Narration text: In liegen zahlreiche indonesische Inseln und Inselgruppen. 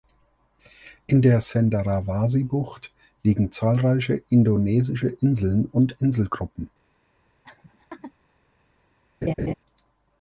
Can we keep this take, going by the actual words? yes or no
no